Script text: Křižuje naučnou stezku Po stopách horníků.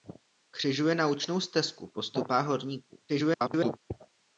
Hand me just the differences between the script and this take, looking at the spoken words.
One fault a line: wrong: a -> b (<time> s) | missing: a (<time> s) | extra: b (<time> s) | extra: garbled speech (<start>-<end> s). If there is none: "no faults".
extra: garbled speech (3.1-3.8 s)